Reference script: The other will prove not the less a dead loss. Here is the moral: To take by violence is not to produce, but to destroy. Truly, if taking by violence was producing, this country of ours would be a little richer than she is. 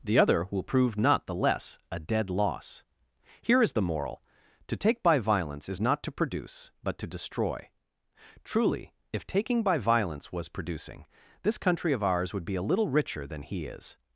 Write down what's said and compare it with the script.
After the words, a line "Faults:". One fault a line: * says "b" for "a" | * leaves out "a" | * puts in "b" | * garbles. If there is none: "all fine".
The other will prove not the less a dead loss. Here is the moral: To take by violence is not to produce, but to destroy. Truly, if taking by violence was producing, this country of ours would be a little richer than he is.
Faults:
* says "he" for "she"